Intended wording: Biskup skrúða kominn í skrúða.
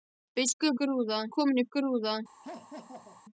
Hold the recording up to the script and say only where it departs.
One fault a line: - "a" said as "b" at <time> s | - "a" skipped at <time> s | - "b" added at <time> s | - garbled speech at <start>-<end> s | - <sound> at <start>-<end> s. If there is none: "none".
- laugh at 2.4-3.2 s